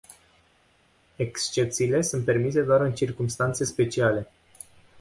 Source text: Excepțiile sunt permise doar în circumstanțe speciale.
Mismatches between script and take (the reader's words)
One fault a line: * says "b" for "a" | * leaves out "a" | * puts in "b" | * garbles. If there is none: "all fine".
all fine